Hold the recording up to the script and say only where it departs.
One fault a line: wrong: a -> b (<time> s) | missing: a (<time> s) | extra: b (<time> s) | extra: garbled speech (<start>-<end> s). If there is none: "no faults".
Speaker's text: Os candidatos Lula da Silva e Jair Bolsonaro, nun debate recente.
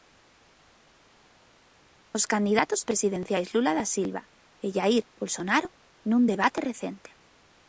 extra: presidenciais (2.9 s)